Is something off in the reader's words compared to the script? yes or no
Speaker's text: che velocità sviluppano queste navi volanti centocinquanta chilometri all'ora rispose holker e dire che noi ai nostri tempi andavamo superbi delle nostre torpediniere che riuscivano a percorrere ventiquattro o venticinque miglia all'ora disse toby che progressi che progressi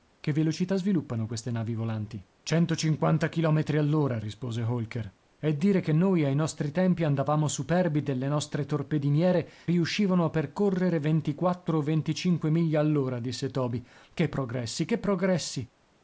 yes